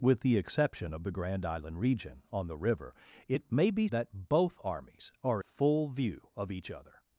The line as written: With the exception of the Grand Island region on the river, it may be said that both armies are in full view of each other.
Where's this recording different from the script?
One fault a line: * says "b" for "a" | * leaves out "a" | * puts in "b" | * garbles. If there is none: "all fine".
* leaves out "said"
* leaves out "in"